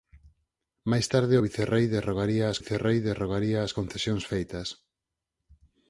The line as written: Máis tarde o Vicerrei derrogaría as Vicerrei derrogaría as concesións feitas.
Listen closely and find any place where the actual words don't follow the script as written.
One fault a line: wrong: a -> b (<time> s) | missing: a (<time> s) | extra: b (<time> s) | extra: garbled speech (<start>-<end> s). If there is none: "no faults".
no faults